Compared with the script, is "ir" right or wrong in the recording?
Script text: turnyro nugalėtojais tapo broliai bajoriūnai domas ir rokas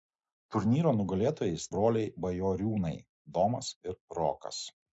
right